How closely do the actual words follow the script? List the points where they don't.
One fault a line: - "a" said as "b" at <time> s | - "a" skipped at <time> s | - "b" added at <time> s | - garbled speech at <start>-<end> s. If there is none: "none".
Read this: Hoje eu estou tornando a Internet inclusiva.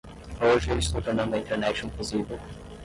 none